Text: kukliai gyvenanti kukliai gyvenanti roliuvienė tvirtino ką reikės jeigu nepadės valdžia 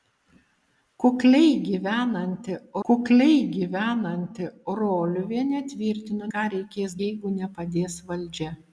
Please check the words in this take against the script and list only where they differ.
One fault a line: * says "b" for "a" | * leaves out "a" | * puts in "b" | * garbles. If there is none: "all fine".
all fine